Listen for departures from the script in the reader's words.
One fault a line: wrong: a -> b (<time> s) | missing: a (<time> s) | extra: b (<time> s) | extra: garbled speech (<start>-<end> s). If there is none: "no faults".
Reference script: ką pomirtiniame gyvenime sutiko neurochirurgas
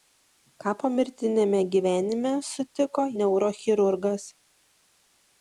no faults